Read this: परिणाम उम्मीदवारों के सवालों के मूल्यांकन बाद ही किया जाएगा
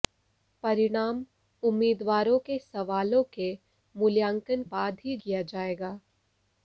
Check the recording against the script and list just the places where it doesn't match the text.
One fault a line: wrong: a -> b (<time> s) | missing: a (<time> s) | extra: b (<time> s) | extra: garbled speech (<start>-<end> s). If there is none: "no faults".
no faults